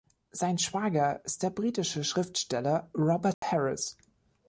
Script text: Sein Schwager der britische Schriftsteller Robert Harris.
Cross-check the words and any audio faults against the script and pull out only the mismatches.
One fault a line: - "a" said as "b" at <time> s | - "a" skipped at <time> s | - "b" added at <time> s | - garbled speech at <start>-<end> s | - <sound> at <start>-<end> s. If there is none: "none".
- "ist" added at 1.2 s
- dropout at 3.3-3.4 s